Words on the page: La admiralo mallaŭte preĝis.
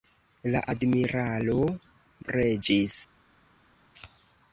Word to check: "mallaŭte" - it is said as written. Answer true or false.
false